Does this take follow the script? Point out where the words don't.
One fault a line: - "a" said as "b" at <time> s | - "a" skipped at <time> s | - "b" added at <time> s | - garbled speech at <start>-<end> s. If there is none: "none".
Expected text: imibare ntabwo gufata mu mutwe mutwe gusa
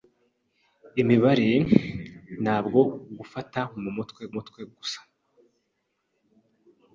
none